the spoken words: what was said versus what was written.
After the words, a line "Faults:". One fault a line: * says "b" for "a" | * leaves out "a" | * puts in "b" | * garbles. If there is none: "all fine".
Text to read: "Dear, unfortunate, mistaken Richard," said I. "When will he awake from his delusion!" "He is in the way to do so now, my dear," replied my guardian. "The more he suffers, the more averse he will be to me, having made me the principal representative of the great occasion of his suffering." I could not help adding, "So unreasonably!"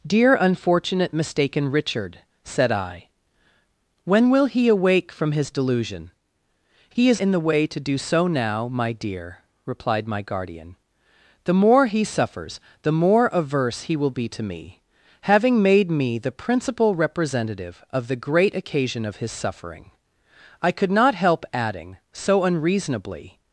"Dear, unfortunate, mistaken Richard," said I. "When will he awake from his delusion!" "He is in the way to do so now, my dear," replied my guardian. "The more he suffers, the more averse he will be to me, having made me the principal representative of the great occasion of his suffering." I could not help adding, "So unreasonably!"
Faults:
all fine